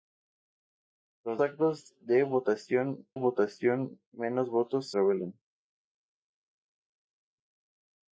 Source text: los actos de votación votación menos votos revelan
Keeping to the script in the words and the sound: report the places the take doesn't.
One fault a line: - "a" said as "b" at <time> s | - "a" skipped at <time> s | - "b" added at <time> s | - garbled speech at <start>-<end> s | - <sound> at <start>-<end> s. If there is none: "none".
none